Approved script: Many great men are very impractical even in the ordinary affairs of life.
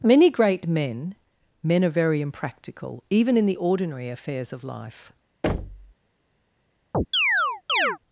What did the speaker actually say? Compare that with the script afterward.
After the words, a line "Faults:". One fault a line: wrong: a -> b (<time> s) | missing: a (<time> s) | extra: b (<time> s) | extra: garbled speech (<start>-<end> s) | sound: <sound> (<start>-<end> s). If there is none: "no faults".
Many great men men are very impractical even in the ordinary affairs of life.
Faults:
extra: men (1.6 s)
sound: thud (5.4-5.9 s)
sound: chirp (6.9-8.0 s)